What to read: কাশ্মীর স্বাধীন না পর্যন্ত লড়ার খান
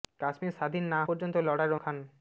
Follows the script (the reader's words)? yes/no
yes